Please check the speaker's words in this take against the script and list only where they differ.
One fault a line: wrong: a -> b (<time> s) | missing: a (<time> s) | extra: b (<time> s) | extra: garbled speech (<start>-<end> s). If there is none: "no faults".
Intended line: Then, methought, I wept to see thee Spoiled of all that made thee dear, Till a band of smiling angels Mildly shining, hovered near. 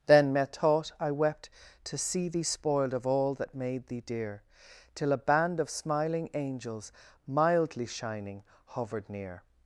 no faults